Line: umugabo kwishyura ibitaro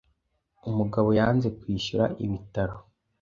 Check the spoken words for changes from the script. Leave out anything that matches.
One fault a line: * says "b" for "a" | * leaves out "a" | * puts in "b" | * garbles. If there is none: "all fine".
* puts in "yanze"